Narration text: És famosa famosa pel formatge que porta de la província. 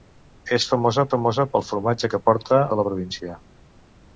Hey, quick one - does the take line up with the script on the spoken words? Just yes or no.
yes